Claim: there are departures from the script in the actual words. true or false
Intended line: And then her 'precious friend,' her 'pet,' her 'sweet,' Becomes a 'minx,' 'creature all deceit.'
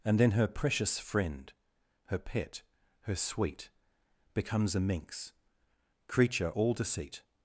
false